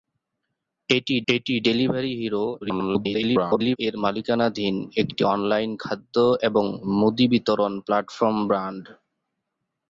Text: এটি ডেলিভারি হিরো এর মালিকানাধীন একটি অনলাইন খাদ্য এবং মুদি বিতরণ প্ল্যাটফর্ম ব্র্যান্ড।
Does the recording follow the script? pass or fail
fail